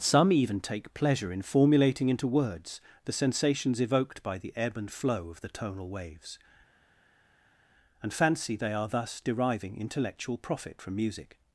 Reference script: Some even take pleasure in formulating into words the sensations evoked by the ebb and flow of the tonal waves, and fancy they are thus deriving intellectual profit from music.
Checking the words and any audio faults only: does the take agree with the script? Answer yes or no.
yes